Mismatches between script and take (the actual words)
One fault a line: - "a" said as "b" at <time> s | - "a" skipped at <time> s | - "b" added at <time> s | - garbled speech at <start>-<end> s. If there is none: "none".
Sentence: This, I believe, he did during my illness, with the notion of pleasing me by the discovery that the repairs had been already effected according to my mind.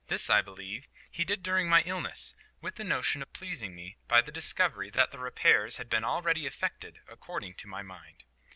none